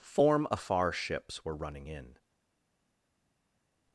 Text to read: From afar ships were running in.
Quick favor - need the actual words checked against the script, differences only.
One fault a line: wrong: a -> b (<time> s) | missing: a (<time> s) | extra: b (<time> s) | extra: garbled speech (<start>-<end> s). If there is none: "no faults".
wrong: From -> Form (0.0 s)